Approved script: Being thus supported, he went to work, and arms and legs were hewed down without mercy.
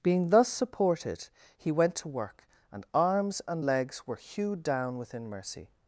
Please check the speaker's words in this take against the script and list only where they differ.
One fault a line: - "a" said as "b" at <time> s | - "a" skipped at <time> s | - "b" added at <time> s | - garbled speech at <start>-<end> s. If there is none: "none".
- "without" said as "within" at 5.0 s